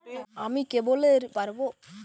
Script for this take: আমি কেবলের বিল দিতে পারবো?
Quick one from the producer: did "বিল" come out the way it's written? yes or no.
no